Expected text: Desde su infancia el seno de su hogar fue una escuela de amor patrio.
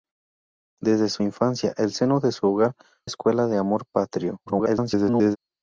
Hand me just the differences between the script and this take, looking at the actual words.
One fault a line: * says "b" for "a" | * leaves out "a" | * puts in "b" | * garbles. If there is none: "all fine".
* leaves out "fue una"
* garbles